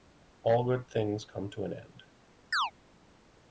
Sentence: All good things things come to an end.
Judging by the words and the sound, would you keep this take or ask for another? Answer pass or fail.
fail